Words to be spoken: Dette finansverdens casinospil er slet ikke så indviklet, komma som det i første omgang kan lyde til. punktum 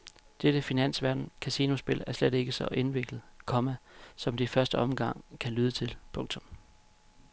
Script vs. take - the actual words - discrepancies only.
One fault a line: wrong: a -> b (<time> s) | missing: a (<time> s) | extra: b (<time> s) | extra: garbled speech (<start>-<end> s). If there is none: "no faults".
no faults